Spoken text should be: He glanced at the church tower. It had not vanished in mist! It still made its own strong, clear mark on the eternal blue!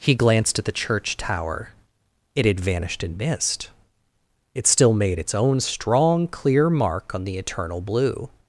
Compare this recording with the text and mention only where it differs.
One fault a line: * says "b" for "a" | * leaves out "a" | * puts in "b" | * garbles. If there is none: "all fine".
* leaves out "not"